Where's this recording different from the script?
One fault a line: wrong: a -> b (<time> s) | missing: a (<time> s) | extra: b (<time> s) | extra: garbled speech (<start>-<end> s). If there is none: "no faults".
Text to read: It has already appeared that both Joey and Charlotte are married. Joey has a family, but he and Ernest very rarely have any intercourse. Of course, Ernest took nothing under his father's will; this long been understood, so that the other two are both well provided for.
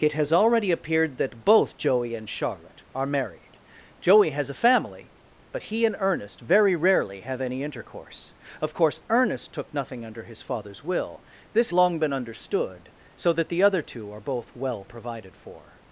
no faults